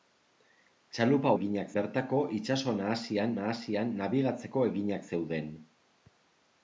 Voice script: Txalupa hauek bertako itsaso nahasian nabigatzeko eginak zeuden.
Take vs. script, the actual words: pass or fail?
fail